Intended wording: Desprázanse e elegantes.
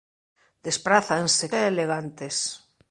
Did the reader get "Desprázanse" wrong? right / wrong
right